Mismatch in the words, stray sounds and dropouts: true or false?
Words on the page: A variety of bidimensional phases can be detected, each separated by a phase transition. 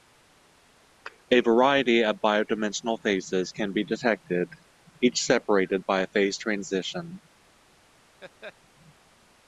true